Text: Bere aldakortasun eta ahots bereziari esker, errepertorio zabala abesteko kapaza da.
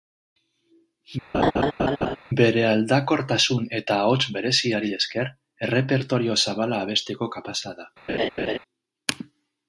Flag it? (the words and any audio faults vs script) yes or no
yes